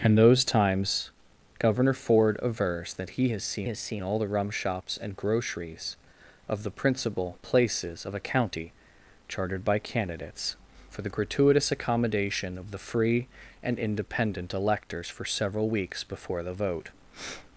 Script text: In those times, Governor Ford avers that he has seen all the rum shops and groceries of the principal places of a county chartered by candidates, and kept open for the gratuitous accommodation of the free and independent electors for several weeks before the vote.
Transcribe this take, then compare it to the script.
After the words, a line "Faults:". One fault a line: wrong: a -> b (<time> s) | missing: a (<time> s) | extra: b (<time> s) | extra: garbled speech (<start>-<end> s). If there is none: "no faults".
In those times, Governor Ford avers that he has seen has seen all the rum shops and groceries of the principal places of a county chartered by candidates, for the gratuitous accommodation of the free and independent electors for several weeks before the vote.
Faults:
extra: has seen (3.7 s)
missing: and kept open (10.5 s)